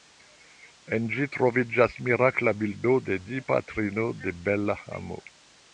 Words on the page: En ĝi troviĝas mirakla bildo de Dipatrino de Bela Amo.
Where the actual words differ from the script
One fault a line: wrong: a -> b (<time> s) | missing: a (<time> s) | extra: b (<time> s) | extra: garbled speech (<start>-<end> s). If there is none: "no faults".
no faults